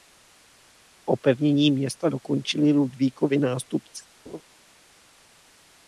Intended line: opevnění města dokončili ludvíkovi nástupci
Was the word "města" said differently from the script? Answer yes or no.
no